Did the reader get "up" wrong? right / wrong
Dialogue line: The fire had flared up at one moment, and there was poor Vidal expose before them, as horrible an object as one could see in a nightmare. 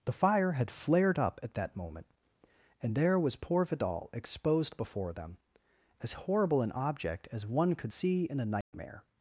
right